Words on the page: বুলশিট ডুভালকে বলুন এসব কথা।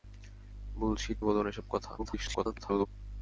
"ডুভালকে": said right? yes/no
no